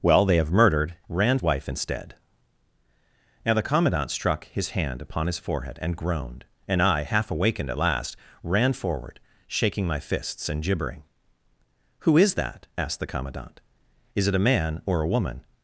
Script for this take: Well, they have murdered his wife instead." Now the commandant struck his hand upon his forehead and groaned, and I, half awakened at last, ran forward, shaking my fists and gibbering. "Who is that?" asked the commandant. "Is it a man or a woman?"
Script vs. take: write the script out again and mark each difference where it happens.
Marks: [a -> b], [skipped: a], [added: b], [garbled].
Well, they have murdered [his -> ran] wife instead." Now the commandant struck his hand upon his forehead and groaned, and I, half awakened at last, ran forward, shaking my fists and gibbering. "Who is that?" asked the commandant. "Is it a man or a woman?"